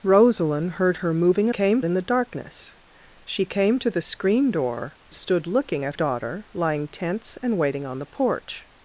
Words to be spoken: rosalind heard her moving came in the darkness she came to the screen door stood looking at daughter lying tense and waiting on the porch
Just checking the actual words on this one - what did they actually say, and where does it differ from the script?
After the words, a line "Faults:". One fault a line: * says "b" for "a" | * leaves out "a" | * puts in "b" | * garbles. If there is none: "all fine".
rosalind heard her moving came in the darkness she came to the screen door stood looking at daughter lying tense and waiting on the porch
Faults:
all fine